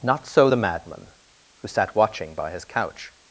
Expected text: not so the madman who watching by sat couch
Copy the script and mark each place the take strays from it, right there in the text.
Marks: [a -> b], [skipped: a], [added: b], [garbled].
not so the madman who [added: sat] watching by [sat -> his] couch